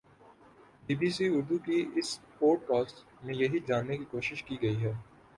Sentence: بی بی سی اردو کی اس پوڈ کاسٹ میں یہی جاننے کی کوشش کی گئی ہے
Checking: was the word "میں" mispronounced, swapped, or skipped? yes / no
no